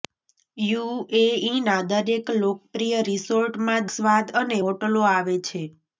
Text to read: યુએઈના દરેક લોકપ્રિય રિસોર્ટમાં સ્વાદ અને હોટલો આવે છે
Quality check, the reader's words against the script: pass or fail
pass